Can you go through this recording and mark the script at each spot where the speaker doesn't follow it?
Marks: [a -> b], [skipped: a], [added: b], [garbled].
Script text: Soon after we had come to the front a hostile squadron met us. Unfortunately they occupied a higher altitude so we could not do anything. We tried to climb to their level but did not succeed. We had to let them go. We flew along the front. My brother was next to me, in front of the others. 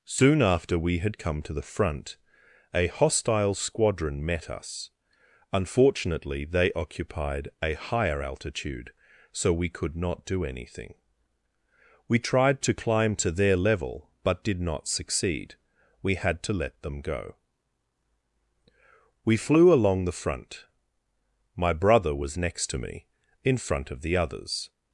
Soon after we had come to the front a hostile squadron met us. Unfortunately they occupied a higher altitude so we could not do anything. We tried to climb to their level but did not succeed. We had to let them go. We flew along the front. My brother was next to me, in front of the others.